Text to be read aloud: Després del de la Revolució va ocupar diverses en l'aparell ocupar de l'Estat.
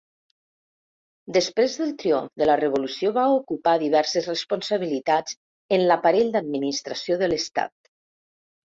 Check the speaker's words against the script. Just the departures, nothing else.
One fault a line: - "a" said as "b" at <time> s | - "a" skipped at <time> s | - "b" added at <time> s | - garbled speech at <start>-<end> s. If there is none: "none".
- "triomf" added at 2.0 s
- "responsabilitats" added at 4.3 s
- "ocupar" said as "d'administració" at 6.4 s